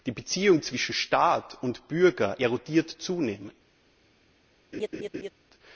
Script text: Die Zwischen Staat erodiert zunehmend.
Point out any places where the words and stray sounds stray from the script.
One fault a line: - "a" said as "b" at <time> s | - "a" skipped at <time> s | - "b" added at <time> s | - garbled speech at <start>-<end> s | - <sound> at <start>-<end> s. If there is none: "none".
- "Beziehung" added at 0.1 s
- "und Bürger" added at 1.6 s
- laugh at 4.7-5.3 s